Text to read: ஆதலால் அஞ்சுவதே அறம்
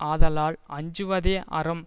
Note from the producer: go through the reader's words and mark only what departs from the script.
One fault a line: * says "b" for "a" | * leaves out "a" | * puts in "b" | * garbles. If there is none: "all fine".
all fine